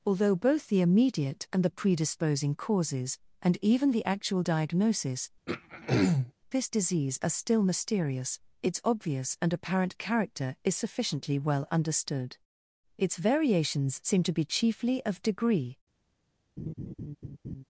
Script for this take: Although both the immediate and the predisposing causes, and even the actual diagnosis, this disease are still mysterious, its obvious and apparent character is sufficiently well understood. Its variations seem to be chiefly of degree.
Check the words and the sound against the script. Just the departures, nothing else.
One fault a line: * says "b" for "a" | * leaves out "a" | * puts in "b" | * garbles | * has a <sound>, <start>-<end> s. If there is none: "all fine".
* has a throat clearing, 5.5-6.3 s
* has a laugh, 16.6-17.6 s